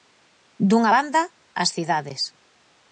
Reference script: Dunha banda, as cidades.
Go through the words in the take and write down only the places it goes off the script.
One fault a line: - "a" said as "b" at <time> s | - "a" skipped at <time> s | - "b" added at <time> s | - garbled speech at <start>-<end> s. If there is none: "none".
none